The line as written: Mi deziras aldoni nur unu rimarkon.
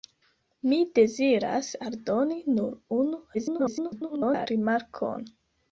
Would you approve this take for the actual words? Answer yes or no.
no